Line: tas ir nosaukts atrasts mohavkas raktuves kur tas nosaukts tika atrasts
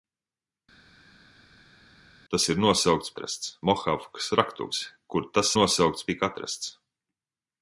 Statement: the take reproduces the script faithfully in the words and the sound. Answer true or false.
true